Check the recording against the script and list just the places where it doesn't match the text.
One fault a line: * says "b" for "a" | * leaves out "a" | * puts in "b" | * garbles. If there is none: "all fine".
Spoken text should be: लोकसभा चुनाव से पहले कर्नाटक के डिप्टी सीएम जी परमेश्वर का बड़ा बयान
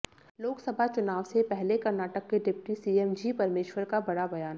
all fine